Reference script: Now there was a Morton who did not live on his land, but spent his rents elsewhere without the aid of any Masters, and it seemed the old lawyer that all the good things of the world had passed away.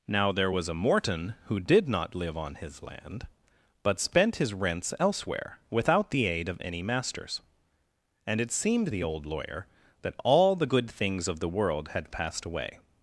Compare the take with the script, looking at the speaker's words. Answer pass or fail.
pass